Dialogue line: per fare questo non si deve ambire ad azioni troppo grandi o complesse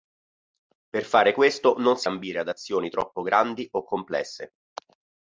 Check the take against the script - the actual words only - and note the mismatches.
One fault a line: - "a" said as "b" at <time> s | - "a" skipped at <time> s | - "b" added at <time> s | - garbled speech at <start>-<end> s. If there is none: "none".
- "deve" skipped at 2.1 s